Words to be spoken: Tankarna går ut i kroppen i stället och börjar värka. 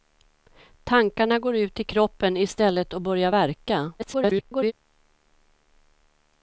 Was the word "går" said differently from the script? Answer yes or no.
no